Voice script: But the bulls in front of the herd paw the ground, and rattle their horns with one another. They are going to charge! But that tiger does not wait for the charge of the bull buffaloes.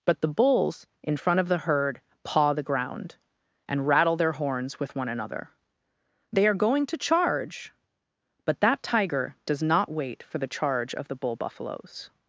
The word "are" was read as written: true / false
true